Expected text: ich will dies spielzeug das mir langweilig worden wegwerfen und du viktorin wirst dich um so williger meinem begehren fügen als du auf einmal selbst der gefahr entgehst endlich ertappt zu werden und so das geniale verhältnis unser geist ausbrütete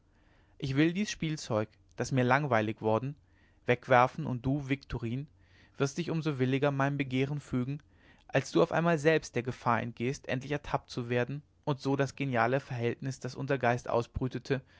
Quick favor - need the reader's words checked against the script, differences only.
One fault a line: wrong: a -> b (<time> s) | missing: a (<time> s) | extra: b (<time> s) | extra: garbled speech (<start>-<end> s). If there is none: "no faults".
extra: das (13.2 s)